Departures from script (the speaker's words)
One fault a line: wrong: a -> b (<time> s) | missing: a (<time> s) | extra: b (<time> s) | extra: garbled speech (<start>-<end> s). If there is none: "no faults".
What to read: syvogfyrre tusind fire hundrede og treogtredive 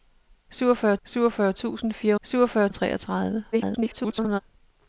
extra: syvogfyrre (1.0 s)
wrong: hundrede -> syvogfyrre (2.2 s)
extra: garbled speech (3.5-4.4 s)